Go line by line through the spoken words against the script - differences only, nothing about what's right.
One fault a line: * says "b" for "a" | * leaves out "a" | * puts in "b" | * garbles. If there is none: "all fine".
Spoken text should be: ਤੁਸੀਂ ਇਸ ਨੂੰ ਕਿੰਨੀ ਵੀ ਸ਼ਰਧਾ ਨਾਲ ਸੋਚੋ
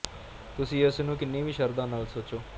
all fine